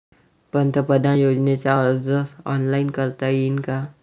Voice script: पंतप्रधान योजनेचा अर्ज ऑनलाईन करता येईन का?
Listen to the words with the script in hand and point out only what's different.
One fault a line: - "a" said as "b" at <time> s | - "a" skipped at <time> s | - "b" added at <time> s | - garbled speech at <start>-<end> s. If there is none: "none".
none